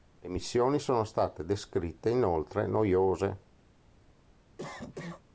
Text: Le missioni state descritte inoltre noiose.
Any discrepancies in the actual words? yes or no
yes